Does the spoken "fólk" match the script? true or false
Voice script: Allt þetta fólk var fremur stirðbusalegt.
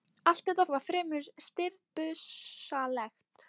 false